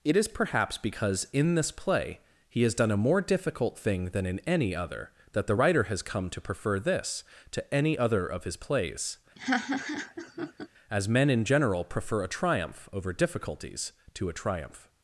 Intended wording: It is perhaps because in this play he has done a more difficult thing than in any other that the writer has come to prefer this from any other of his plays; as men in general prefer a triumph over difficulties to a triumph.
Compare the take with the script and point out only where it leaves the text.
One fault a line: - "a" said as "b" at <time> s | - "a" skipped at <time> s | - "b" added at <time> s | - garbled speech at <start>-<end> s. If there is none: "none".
- "from" said as "to" at 7.5 s